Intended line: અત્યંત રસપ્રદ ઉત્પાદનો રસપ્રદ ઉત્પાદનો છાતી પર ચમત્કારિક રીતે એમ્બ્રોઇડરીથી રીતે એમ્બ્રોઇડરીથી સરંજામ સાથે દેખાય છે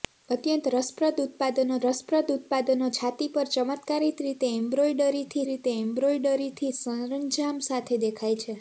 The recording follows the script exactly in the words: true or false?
true